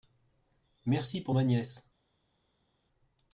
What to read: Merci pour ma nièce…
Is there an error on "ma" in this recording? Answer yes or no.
no